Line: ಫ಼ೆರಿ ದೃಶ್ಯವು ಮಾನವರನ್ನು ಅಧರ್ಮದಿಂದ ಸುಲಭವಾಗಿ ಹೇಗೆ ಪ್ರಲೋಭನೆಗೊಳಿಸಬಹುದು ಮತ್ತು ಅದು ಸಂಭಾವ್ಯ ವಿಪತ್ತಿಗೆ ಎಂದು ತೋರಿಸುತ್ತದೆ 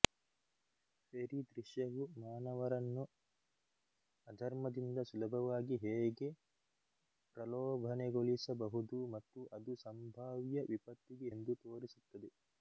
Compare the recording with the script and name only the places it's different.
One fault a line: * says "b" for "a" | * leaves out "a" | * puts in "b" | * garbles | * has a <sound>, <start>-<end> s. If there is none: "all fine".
all fine